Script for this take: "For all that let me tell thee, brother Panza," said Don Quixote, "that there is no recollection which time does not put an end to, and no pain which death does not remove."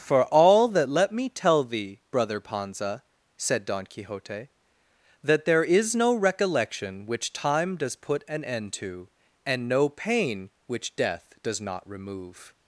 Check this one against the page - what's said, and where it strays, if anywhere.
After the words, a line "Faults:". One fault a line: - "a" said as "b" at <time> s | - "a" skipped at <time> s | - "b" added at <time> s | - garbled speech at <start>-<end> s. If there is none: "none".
"For all that let me tell thee, brother Panza," said Don Quixote, "that there is no recollection which time does put an end to, and no pain which death does not remove."
Faults:
- "not" skipped at 8.0 s